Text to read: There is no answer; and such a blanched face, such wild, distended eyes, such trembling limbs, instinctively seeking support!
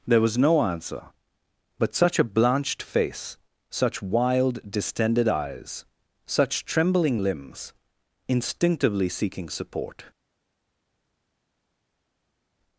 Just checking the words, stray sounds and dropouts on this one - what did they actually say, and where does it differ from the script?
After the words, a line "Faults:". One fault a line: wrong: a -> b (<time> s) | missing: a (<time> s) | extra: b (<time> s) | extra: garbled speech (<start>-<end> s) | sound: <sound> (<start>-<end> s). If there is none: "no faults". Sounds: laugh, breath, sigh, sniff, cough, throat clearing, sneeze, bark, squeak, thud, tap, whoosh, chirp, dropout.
There was no answer; but such a blanched face, such wild, distended eyes, such trembling limbs, instinctively seeking support!
Faults:
wrong: is -> was (0.2 s)
wrong: and -> but (1.8 s)